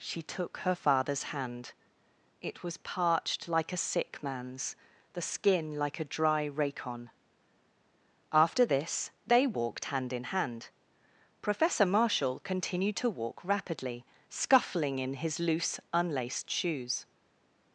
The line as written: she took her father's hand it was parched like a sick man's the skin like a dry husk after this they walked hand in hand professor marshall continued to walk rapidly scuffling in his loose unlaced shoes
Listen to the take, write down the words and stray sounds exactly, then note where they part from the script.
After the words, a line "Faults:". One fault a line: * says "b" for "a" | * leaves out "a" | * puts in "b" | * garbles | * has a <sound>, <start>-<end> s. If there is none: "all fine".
she took her father's hand it was parched like a sick man's the skin like a dry racon after this they walked hand in hand professor marshall continued to walk rapidly scuffling in his loose unlaced shoes
Faults:
* says "racon" for "husk"